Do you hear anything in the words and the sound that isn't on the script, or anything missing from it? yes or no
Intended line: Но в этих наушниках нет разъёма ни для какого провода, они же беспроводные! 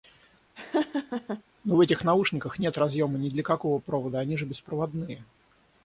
yes